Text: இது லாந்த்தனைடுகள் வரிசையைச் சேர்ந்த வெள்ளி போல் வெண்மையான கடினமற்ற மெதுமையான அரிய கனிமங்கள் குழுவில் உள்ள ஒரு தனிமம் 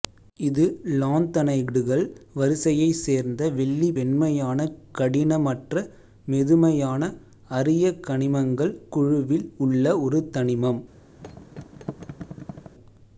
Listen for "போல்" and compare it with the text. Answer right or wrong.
wrong